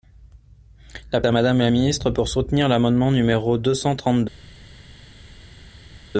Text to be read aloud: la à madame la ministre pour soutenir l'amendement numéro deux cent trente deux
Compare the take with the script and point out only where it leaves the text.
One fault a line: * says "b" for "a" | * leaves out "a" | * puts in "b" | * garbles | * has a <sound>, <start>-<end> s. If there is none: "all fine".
all fine